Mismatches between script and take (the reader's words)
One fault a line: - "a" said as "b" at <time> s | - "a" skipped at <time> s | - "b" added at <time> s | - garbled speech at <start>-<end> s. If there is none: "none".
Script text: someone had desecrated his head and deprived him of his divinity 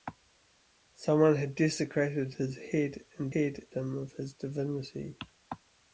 - "deprived" said as "head" at 3.3 s